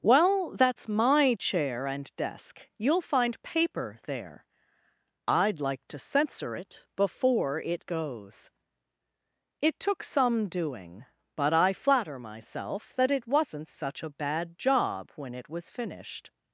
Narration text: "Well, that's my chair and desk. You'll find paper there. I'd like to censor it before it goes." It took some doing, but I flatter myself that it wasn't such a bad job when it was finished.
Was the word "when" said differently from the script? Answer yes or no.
no